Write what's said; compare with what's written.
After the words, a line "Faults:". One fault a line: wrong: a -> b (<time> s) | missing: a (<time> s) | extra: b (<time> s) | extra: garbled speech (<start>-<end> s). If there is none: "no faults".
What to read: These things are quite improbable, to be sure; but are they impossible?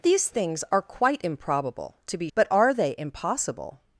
These things are quite improbable, to be; but are they impossible?
Faults:
missing: sure (2.3 s)